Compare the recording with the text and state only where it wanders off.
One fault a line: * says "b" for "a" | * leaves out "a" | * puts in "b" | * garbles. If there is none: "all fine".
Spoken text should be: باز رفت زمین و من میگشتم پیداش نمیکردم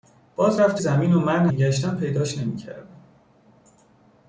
all fine